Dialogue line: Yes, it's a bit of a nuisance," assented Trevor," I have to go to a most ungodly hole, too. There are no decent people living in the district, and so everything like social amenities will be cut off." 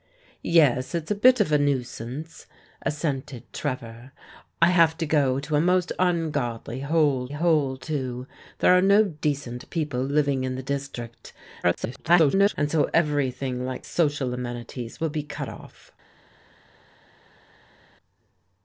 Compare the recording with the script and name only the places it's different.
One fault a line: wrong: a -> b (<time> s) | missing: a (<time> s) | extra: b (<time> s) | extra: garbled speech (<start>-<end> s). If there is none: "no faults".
extra: hole (7.3 s)
extra: garbled speech (11.6-12.5 s)